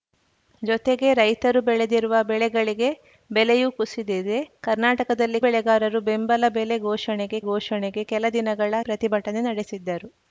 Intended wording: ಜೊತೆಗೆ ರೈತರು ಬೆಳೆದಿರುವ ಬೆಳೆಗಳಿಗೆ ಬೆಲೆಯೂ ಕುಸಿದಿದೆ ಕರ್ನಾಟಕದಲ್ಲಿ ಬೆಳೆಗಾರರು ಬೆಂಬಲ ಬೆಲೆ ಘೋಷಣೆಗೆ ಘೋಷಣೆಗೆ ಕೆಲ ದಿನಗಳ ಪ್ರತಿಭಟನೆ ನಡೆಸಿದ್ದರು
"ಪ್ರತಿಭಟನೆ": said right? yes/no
yes